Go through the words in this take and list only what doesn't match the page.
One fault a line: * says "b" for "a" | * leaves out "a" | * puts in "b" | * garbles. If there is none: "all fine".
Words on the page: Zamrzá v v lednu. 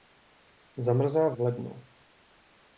all fine